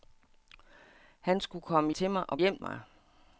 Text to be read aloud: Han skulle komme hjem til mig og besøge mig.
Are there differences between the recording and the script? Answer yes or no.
yes